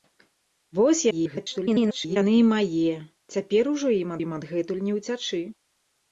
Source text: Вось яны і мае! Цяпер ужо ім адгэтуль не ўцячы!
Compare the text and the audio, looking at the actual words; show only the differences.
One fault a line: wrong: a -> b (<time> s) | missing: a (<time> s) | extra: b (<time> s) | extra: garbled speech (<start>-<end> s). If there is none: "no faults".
extra: garbled speech (1.1-2.2 s)
extra: ім (4.2 s)